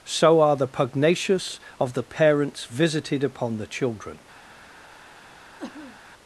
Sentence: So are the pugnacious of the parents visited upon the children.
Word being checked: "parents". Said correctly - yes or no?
yes